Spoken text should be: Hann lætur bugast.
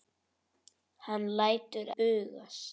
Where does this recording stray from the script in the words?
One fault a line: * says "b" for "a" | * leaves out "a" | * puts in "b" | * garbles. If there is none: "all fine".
all fine